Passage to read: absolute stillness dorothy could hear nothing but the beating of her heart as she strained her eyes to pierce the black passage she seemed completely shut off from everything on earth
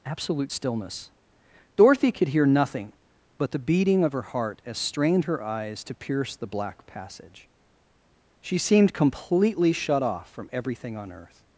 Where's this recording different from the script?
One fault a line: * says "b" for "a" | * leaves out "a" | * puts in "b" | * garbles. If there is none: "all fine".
* leaves out "she"